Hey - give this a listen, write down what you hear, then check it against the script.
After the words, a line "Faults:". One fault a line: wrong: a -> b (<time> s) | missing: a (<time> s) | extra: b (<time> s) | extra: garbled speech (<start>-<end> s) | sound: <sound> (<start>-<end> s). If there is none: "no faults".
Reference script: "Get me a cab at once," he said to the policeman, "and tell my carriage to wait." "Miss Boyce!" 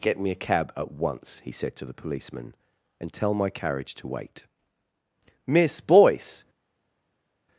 "Get me a cab at once," he said to the policeman, "and tell my carriage to wait." "Miss Boyce!"
Faults:
no faults